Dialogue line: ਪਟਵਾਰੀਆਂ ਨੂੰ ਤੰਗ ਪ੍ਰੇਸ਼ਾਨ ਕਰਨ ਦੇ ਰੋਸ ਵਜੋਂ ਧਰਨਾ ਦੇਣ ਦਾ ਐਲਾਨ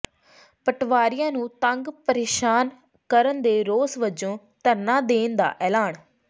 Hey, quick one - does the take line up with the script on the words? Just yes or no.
yes